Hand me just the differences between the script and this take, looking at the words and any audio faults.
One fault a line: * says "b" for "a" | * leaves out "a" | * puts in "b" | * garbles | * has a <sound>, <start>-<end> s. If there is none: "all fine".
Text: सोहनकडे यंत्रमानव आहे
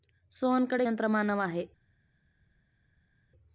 all fine